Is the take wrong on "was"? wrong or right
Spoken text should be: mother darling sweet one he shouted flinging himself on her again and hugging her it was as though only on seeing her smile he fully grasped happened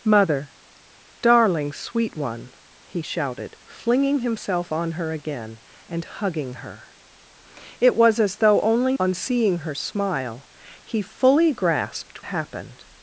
right